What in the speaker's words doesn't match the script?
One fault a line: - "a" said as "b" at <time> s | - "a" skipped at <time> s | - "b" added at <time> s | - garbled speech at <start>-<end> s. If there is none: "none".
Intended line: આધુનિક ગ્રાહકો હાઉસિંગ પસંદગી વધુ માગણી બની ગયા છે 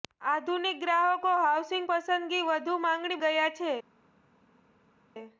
- "બની" skipped at 3.2 s